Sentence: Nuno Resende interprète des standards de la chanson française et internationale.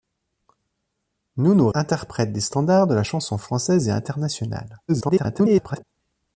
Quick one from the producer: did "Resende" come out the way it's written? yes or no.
no